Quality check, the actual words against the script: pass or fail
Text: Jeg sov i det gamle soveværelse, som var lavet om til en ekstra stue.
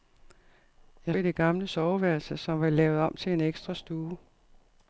fail